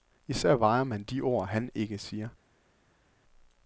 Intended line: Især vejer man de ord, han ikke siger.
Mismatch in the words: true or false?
false